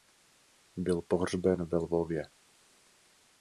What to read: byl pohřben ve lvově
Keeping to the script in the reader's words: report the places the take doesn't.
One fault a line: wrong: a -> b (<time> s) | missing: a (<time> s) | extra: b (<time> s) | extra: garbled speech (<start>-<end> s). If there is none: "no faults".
no faults